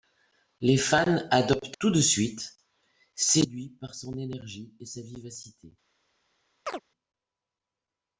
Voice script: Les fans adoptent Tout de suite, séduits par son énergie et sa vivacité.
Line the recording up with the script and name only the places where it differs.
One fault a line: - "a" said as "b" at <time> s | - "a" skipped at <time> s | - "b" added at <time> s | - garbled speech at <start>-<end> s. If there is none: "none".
none